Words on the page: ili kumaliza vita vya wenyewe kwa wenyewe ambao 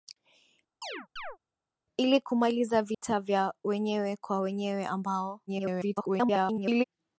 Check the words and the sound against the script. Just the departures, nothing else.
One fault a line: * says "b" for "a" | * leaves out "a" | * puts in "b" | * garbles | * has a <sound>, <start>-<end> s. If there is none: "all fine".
* has a chirp, 0.8-1.4 s
* has a dropout, 2.9-3.0 s
* garbles